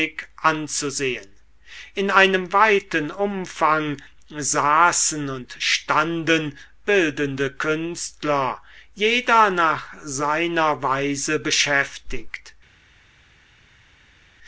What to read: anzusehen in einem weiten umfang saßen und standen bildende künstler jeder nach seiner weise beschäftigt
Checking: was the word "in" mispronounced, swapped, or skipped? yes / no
no